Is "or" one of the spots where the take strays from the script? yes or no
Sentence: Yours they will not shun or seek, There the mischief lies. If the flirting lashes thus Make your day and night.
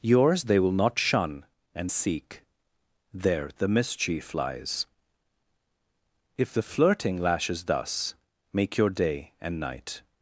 yes